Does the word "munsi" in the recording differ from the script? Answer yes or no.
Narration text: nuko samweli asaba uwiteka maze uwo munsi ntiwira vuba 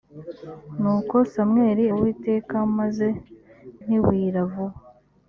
yes